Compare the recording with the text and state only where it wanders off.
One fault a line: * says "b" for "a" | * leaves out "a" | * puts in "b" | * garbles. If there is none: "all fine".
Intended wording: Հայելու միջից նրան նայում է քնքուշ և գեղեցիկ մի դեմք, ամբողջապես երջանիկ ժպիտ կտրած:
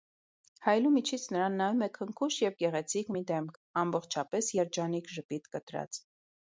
all fine